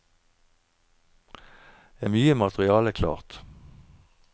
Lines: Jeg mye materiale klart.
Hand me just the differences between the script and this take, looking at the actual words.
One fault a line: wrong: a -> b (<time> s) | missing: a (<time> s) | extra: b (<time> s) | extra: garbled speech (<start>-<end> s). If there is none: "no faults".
no faults